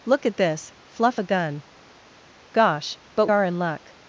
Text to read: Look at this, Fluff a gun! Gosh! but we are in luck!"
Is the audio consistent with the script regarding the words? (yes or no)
no